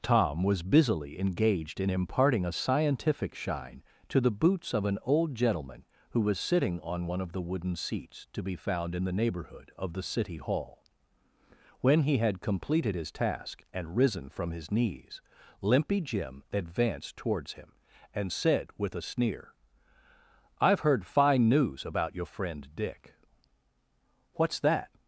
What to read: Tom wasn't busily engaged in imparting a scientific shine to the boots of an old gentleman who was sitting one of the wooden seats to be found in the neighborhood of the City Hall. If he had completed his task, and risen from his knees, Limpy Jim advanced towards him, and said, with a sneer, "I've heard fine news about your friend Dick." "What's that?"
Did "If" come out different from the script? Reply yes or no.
yes